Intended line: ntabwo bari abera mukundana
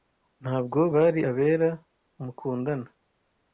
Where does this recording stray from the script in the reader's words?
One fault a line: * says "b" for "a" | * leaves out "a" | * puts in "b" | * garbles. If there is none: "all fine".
all fine